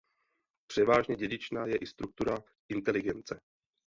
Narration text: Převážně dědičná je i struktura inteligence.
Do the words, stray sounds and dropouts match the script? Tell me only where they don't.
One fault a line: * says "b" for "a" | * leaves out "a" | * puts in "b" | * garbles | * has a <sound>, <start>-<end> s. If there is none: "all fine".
all fine